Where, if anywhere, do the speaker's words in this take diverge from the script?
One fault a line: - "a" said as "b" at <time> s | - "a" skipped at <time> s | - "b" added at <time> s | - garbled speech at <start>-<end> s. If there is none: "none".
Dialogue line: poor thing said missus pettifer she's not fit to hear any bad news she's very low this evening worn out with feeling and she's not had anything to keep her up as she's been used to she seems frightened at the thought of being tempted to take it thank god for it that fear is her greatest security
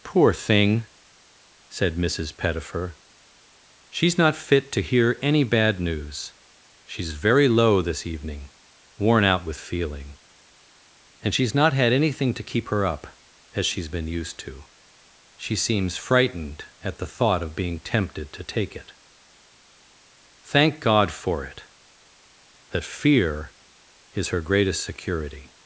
none